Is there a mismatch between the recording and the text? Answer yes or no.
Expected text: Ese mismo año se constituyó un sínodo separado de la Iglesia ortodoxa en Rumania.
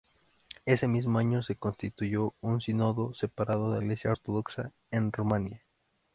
yes